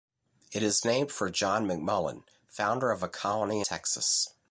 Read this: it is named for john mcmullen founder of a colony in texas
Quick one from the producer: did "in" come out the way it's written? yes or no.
no